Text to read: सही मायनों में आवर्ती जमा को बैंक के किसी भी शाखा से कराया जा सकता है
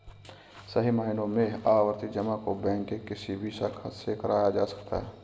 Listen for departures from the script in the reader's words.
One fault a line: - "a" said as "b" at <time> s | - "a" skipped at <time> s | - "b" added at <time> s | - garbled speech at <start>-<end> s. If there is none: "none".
none